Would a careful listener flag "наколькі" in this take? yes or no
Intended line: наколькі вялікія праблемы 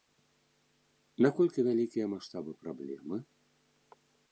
no